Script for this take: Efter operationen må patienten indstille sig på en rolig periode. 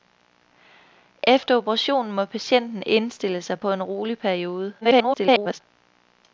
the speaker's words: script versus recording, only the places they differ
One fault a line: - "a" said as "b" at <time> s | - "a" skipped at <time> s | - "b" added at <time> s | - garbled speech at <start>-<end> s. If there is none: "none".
- garbled speech at 4.8-5.6 s